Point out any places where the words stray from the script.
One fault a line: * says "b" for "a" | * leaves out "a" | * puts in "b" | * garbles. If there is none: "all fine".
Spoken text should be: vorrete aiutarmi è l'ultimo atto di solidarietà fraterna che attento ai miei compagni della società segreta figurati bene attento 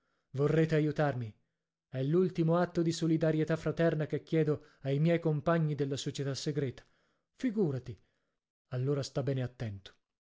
* says "chiedo" for "attento"
* puts in "allora sta"